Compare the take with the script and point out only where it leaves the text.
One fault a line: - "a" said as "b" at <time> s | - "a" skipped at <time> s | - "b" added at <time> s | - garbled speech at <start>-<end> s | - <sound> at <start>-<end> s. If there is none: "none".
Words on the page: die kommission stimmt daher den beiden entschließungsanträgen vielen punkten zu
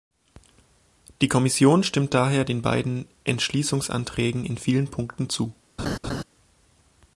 - "in" added at 4.5 s
- laugh at 5.8-6.2 s